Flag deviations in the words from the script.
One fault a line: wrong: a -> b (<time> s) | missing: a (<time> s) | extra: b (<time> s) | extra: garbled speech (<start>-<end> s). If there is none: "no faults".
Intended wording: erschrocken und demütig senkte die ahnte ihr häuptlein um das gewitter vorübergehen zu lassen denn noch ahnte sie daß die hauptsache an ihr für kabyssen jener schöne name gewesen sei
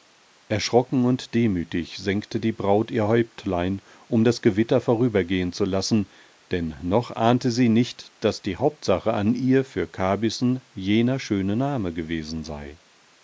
wrong: ahnte -> braut (2.5 s)
extra: nicht (7.7 s)